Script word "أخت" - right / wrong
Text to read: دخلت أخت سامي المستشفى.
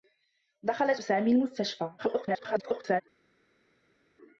wrong